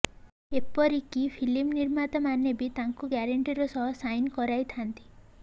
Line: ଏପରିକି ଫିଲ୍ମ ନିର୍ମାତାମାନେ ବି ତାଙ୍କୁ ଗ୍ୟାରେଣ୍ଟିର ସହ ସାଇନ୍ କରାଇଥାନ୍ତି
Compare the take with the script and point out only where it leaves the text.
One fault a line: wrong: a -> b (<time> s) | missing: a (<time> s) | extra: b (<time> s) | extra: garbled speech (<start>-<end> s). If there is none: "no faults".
no faults